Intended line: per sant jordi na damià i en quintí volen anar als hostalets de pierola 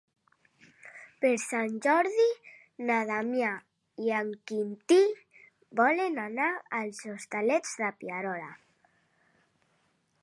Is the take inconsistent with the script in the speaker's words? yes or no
no